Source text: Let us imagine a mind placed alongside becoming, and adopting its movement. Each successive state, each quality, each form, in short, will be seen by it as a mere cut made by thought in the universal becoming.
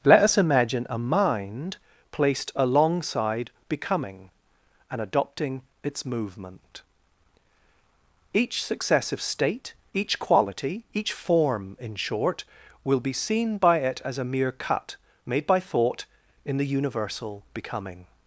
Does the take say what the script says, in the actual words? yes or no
yes